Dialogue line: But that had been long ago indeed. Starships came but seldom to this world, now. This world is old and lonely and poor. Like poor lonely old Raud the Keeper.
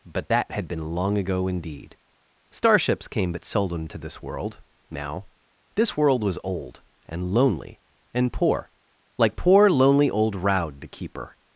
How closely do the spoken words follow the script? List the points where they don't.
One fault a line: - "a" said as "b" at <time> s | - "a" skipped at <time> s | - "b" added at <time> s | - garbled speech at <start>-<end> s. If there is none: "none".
- "is" said as "was" at 6.2 s